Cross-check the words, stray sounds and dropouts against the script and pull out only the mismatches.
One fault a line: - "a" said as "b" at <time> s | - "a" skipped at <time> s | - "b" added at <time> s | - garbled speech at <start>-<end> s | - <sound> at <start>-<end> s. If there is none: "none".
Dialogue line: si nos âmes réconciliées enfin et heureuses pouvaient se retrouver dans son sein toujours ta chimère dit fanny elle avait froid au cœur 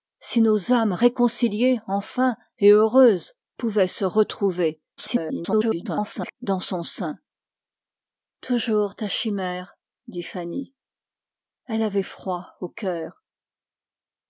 - garbled speech at 5.0-6.3 s